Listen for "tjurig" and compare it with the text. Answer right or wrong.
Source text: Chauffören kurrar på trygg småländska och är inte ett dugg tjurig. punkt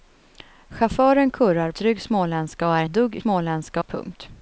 wrong